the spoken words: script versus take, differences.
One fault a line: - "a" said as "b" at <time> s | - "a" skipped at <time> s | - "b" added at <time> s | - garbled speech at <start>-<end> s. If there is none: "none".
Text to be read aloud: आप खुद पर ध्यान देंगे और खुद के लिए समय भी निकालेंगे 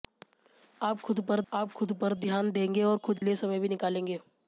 - "आप खुद पर" added at 1.5 s
- "के" skipped at 3.2 s